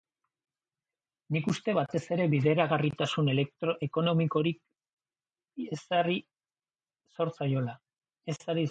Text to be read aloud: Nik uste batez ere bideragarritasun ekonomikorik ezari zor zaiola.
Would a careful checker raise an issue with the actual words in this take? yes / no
no